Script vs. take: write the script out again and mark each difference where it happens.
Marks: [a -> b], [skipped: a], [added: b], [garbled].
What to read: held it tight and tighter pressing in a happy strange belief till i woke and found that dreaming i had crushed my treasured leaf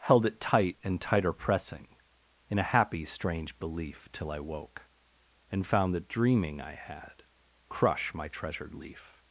held it tight and tighter pressing in a happy strange belief till i woke and found that dreaming i had [crushed -> crush] my treasured leaf